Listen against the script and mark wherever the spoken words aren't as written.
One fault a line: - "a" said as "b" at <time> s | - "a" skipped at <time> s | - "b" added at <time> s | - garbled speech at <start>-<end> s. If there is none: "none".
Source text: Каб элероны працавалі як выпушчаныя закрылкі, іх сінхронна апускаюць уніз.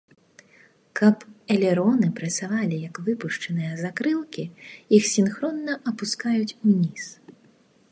none